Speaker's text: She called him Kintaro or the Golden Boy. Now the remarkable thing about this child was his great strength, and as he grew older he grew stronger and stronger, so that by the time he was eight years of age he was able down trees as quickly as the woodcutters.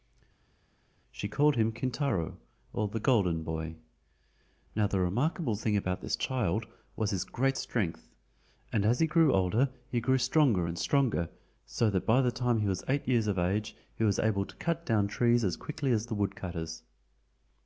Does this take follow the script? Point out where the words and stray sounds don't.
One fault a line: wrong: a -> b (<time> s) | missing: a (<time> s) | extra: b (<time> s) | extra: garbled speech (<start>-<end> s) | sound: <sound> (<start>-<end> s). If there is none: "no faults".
extra: to cut (14.4 s)